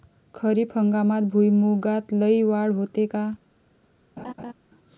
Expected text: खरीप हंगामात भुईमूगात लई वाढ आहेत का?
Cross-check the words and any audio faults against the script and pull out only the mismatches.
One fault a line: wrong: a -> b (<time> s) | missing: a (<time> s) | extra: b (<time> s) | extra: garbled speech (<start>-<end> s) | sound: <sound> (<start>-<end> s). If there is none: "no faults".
wrong: आहेत -> होते (2.7 s)
sound: laugh (4.2-4.5 s)